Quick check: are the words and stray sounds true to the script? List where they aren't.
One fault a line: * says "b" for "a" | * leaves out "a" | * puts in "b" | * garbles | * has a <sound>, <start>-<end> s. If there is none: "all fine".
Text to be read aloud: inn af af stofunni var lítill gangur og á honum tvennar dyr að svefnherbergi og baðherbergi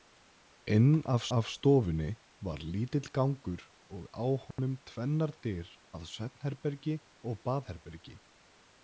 * has a dropout, 4.5-4.6 s